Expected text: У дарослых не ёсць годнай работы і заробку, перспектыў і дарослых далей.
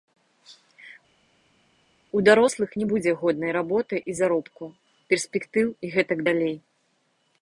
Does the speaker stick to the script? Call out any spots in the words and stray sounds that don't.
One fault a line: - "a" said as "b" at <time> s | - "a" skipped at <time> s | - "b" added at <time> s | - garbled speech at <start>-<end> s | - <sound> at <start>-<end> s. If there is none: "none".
- "ёсць" said as "будзе" at 2.9 s
- "дарослых" said as "гэтак" at 6.0 s